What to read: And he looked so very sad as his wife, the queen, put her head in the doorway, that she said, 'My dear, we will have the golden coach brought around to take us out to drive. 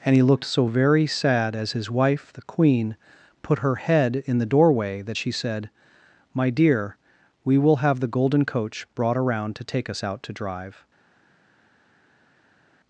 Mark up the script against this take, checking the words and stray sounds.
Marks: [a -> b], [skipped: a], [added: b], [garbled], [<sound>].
And he looked so very sad as his wife, the queen, put her head in the doorway, that she said, 'My dear, we will have the golden coach brought around to take us out to drive.